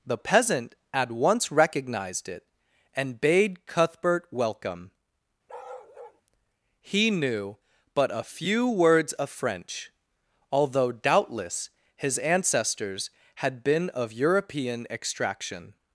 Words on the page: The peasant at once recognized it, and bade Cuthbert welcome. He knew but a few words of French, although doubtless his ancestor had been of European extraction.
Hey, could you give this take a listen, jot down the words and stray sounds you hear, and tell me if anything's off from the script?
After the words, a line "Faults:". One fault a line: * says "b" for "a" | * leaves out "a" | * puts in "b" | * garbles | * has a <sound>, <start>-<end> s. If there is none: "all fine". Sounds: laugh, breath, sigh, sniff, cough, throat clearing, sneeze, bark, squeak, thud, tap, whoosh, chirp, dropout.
The peasant at once recognized it, and bade Cuthbert welcome. He knew but a few words of French, although doubtless his ancestors had been of European extraction.
Faults:
* has a bark, 5.5-6.2 s
* says "ancestors" for "ancestor"